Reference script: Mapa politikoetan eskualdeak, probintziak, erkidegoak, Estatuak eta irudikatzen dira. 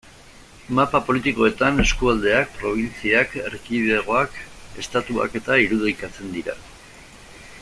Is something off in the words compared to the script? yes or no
no